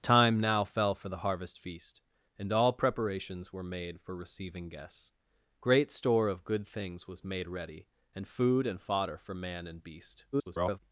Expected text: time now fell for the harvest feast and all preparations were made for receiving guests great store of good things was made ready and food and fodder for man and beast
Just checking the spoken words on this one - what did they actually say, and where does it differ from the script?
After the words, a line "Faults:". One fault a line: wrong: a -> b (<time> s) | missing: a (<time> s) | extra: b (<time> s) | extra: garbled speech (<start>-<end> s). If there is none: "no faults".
time now fell for the harvest feast and all preparations were made for receiving guests great store of good things was made ready and food and fodder for man and beast [garbled]
Faults:
extra: garbled speech (10.3-10.8 s)